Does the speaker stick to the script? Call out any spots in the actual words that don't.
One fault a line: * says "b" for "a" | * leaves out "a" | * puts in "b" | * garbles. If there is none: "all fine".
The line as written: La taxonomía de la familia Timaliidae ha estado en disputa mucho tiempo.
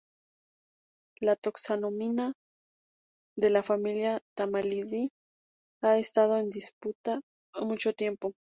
all fine